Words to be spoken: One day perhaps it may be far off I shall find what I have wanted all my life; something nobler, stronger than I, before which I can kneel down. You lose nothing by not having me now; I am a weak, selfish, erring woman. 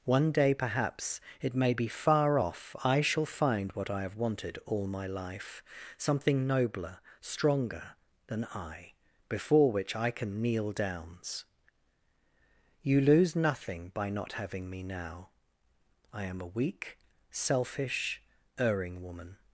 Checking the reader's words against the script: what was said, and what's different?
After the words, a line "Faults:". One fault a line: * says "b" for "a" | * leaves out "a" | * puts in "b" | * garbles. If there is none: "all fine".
One day perhaps it may be far off I shall find what I have wanted all my life; something nobler, stronger than I, before which I can kneel downs. You lose nothing by not having me now; I am a weak, selfish, erring woman.
Faults:
* says "downs" for "down"